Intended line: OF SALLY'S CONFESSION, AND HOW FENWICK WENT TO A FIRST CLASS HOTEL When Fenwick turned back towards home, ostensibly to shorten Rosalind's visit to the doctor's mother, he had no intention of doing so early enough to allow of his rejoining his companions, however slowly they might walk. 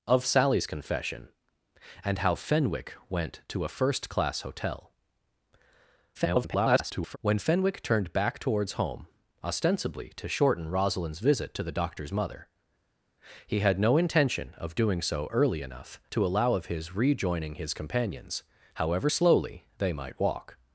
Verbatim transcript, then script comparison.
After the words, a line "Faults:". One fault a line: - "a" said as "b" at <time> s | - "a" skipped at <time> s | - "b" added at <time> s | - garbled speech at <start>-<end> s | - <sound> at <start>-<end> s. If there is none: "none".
OF SALLY'S CONFESSION, AND HOW FENWICK WENT TO A FIRST CLASS HOTEL [garbled] When Fenwick turned back towards home, ostensibly to shorten Rosalind's visit to the doctor's mother, he had no intention of doing so early enough to allow of his rejoining his companions, however slowly they might walk.
Faults:
- garbled speech at 6.1-7.2 s